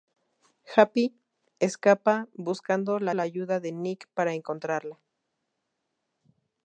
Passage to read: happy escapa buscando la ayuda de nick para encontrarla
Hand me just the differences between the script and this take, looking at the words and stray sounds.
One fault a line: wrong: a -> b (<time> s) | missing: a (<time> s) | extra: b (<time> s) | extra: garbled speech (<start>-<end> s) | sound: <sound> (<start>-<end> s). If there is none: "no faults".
extra: la (3.1 s)